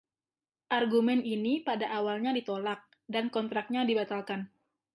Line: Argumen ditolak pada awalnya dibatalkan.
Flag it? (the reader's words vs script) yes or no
yes